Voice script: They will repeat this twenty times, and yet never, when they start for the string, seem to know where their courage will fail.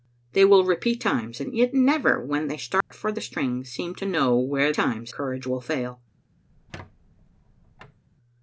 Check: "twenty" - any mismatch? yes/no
yes